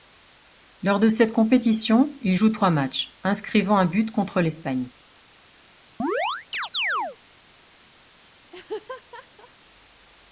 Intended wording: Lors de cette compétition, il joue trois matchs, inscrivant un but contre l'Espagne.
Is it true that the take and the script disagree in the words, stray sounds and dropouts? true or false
true